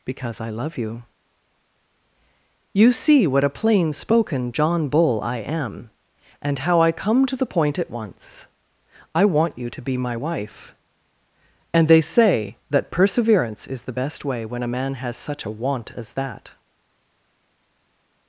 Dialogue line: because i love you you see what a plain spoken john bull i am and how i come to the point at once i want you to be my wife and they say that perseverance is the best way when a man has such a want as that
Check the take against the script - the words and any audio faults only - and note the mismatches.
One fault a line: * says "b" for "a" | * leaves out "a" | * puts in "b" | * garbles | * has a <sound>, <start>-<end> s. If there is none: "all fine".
all fine